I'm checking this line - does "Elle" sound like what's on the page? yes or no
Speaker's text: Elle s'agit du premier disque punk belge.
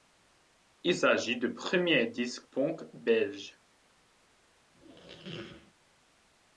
no